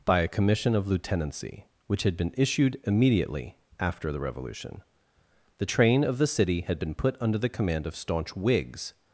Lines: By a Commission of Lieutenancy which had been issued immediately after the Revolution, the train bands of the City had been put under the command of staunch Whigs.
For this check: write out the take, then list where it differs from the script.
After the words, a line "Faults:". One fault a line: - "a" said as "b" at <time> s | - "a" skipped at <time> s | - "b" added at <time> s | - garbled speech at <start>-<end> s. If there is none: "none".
By a Commission of Lieutenancy which had been issued immediately after the Revolution, the train of the City had been put under the command of staunch Whigs.
Faults:
- "bands" skipped at 6.0 s